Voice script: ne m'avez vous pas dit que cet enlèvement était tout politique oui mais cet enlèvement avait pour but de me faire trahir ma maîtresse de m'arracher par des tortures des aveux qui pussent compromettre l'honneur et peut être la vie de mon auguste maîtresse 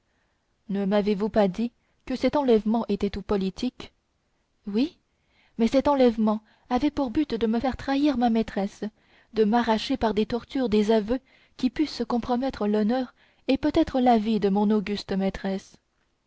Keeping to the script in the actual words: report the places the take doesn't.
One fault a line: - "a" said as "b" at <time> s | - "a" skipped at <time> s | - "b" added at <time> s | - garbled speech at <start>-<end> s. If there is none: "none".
none